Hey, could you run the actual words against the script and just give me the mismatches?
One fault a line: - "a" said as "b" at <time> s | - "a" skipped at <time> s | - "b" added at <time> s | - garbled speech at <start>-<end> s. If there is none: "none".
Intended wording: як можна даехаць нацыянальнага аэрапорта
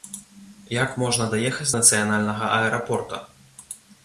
none